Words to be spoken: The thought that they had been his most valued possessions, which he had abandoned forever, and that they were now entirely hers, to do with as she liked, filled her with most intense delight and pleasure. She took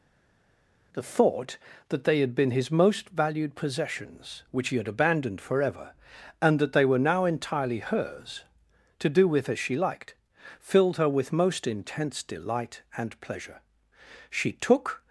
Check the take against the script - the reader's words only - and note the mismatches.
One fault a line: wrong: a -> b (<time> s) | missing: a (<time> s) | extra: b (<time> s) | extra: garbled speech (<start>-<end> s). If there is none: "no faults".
no faults